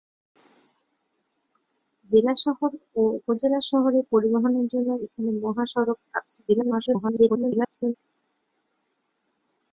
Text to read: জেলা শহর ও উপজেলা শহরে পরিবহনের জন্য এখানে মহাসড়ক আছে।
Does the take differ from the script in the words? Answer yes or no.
yes